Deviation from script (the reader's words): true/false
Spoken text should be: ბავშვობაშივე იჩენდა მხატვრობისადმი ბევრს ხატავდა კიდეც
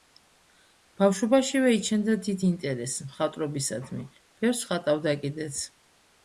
true